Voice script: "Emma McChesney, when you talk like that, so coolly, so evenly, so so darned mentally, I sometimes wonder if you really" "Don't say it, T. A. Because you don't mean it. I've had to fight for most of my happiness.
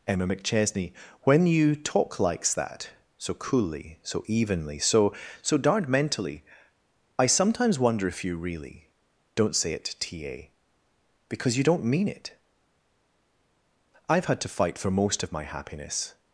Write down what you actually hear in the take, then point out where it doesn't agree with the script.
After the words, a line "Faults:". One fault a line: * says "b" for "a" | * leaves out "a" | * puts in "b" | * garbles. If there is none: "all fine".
"Emma McChesney, when you talk likes that, so coolly, so evenly, so so darned mentally, I sometimes wonder if you really" "Don't say it, T. A. Because you don't mean it. I've had to fight for most of my happiness.
Faults:
* says "likes" for "like"